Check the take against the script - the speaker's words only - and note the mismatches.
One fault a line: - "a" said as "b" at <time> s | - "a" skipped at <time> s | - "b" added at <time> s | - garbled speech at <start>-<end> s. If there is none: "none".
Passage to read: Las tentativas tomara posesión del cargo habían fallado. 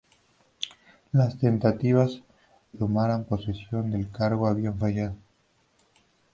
none